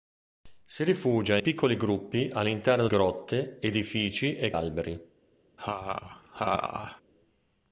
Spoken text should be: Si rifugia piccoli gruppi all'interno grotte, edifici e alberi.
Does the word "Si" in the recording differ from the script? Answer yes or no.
no